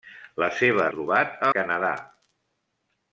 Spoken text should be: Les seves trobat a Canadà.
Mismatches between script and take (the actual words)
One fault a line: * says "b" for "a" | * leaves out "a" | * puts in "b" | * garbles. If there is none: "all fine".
all fine